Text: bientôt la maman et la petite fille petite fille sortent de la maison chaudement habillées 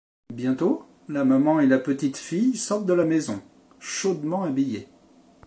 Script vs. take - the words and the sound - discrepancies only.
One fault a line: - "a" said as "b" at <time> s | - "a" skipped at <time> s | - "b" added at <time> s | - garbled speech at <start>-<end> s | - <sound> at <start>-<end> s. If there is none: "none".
- "petite fille" skipped at 2.5 s